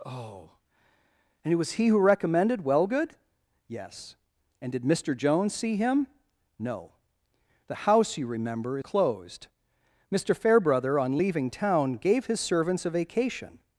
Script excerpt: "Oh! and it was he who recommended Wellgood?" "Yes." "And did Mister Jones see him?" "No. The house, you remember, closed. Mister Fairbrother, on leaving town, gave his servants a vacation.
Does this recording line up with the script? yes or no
yes